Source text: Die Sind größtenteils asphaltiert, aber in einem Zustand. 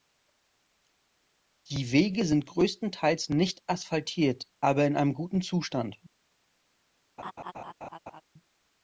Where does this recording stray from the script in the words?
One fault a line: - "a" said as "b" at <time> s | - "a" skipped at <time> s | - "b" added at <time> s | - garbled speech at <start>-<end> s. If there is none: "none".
- "Wege" added at 1.9 s
- "nicht" added at 3.3 s
- "guten" added at 5.1 s